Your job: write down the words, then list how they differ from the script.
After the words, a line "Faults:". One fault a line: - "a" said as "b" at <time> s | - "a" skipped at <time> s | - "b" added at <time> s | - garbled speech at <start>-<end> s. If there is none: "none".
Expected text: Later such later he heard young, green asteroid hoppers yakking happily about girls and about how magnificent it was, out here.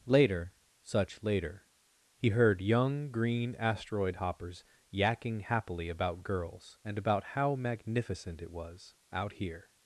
Later such later he heard young, green asteroid hoppers yakking happily about girls and about how magnificent it was, out here.
Faults:
none